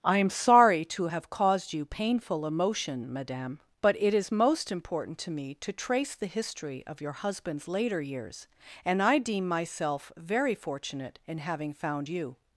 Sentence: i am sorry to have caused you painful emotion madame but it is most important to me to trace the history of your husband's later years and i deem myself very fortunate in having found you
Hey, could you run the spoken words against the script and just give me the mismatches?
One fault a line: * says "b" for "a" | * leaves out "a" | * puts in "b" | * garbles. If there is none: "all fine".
all fine